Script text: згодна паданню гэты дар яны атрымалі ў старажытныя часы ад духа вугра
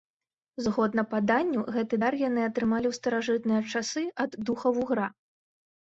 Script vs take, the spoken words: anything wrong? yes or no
no